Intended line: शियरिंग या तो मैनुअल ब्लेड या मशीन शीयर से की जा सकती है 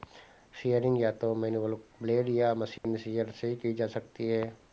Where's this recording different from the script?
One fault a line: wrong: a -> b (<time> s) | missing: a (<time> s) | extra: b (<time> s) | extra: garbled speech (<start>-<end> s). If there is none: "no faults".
no faults